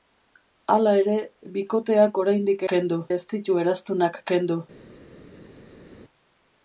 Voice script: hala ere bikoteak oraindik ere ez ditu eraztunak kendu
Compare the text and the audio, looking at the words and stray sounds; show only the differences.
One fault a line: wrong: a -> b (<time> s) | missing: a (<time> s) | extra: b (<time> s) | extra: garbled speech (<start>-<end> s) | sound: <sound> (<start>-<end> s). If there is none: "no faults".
wrong: ere -> kendu (2.7 s)